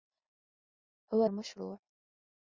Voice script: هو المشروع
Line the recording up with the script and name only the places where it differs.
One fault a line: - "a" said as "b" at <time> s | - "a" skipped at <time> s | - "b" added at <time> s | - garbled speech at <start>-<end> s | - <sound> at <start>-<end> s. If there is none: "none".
none